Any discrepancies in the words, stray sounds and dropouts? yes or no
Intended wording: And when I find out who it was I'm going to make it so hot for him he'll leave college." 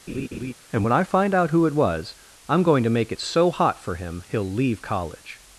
yes